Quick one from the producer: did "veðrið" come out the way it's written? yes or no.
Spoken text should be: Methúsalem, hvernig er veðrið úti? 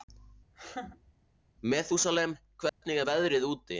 yes